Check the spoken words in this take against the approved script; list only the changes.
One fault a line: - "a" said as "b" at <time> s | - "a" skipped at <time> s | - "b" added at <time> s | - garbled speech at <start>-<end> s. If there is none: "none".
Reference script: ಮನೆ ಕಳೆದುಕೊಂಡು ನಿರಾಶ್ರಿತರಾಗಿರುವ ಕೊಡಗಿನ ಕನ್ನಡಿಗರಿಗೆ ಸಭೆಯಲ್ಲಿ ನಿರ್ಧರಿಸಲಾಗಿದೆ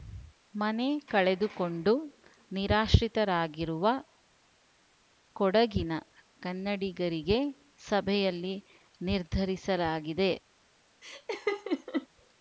none